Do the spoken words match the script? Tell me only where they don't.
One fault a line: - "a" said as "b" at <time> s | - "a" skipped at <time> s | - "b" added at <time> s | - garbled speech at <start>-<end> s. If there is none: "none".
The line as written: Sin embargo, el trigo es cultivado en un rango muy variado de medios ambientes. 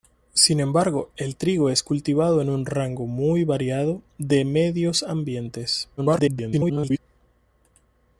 - garbled speech at 6.0-7.0 s